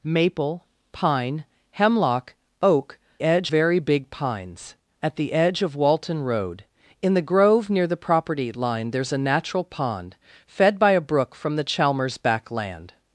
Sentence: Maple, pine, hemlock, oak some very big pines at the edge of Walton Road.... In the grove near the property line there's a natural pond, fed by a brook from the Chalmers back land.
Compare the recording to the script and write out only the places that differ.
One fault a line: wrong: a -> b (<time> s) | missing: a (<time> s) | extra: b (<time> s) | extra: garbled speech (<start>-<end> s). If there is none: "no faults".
wrong: some -> edge (3.2 s)